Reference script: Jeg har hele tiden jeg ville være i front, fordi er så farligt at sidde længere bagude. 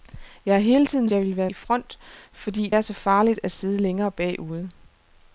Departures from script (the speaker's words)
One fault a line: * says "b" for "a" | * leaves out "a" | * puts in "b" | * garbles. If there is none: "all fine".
all fine